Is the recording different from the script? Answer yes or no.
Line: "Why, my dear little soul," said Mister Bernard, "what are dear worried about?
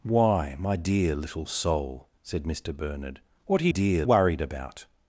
no